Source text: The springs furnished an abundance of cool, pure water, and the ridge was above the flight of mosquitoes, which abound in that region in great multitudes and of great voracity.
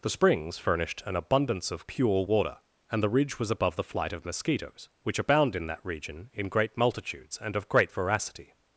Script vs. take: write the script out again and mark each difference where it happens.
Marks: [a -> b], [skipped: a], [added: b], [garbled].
The springs furnished an abundance of [skipped: cool,] pure water, and the ridge was above the flight of mosquitoes, which abound in that region in great multitudes and of great voracity.